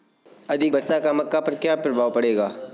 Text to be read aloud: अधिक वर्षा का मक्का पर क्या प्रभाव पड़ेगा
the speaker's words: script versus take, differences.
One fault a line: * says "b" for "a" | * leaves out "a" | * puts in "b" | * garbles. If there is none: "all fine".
all fine